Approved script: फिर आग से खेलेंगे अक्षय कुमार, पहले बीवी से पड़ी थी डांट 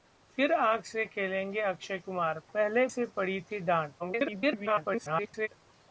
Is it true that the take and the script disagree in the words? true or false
true